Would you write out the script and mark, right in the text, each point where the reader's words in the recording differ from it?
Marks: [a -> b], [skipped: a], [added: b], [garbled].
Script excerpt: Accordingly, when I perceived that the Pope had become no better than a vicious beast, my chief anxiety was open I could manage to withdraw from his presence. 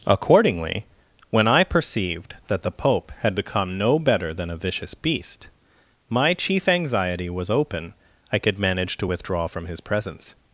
Accordingly, when I perceived that the Pope had become no better than a vicious beast, my chief anxiety was open I could manage to withdraw from his presence.